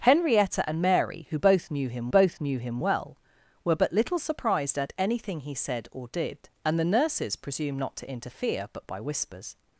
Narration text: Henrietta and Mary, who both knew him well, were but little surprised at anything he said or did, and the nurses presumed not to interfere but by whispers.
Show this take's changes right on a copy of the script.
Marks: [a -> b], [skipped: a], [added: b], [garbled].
Henrietta and Mary, who both knew him [added: both knew him] well, were but little surprised at anything he said or did, and the nurses presumed not to interfere but by whispers.